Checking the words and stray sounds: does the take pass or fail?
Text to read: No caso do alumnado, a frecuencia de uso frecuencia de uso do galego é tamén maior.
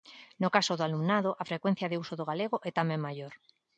fail